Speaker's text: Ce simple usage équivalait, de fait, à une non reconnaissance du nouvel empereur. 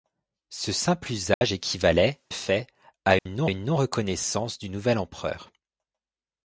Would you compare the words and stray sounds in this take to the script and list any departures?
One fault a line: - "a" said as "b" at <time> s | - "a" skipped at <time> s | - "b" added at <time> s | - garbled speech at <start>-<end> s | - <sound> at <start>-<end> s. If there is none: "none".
- dropout at 1.3-1.4 s
- "de" skipped at 2.2 s
- dropout at 3.2-3.3 s
- "une non" added at 3.4 s